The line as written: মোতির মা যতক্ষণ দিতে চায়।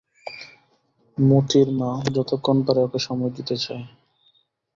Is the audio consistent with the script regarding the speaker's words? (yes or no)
no